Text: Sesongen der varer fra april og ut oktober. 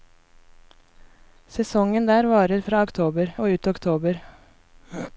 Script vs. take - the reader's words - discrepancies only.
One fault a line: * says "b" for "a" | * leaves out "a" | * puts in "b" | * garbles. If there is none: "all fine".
* says "oktober" for "april"